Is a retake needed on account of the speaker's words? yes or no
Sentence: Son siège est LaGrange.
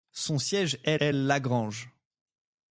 yes